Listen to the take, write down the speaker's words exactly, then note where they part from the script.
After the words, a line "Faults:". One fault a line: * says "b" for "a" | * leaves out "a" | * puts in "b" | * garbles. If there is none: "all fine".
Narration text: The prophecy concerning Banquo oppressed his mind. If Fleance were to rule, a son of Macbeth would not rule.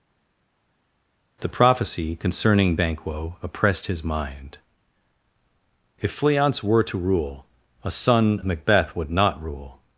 The prophecy concerning Banquo oppressed his mind. If Fleance were to rule, a son Macbeth would not rule.
Faults:
* leaves out "of"